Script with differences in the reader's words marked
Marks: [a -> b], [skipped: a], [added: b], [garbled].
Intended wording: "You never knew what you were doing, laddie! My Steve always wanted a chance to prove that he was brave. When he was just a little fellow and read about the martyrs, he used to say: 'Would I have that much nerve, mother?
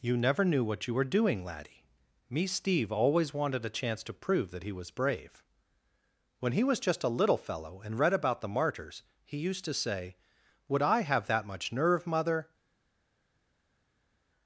"You never knew what you were doing, laddie! [My -> Me] Steve always wanted a chance to prove that he was brave. When he was just a little fellow and read about the martyrs, he used to say: 'Would I have that much nerve, mother?